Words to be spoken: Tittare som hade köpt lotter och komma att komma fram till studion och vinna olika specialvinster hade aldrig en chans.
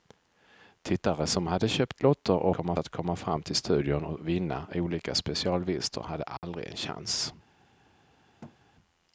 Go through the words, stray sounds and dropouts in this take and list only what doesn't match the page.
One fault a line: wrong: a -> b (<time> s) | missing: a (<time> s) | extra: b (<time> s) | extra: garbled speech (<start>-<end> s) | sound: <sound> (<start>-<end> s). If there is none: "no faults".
sound: dropout (6.4-6.4 s)
sound: thud (8.4-8.6 s)